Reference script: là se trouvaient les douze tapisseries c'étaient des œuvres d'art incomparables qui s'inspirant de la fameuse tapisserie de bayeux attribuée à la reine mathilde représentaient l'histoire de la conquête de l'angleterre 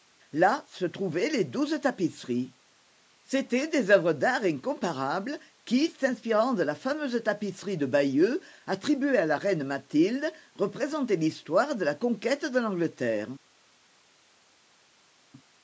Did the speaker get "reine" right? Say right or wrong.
right